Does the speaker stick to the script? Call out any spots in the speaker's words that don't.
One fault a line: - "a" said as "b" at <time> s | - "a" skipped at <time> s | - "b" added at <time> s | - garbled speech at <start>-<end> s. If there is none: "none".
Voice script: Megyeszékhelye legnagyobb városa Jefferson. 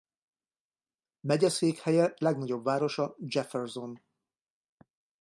none